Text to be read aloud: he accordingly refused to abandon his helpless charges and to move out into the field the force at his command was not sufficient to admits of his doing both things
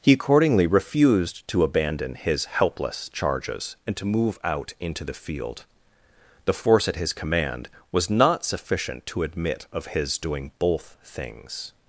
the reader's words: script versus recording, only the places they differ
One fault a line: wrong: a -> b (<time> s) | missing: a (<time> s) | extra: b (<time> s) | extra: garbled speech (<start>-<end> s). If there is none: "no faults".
wrong: admits -> admit (9.2 s)